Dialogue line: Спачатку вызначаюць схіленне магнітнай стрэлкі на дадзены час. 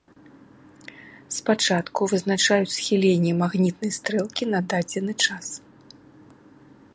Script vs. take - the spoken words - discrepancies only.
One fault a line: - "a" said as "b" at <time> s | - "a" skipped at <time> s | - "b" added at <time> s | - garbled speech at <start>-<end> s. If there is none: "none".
none